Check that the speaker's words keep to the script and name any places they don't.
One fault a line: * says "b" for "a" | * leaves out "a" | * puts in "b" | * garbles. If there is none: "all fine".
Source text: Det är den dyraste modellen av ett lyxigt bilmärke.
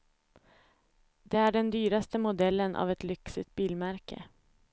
all fine